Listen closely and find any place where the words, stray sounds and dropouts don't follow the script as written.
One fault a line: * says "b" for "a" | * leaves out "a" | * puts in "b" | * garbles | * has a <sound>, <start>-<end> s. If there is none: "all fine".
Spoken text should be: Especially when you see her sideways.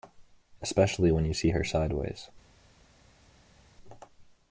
all fine